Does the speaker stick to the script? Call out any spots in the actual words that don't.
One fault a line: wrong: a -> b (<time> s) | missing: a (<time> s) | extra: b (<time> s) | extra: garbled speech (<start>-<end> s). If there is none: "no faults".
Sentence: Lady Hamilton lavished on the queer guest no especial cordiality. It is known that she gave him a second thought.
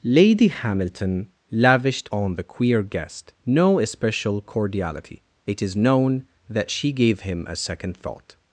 no faults